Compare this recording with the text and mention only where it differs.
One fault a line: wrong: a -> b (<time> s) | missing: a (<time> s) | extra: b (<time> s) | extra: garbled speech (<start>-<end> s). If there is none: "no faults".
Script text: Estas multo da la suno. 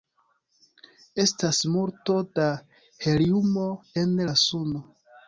extra: heliumo en (3.0 s)